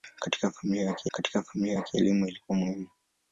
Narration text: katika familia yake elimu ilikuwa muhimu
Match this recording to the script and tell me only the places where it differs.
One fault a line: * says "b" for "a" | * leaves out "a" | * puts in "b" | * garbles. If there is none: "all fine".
* puts in "katika familia yake"